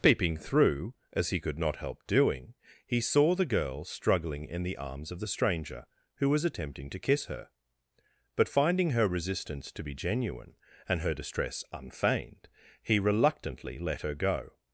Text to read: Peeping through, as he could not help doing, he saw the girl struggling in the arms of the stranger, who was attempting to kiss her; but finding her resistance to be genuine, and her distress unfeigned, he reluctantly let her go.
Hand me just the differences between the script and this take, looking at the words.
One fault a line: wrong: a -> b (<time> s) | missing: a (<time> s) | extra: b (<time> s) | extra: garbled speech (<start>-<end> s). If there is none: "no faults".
no faults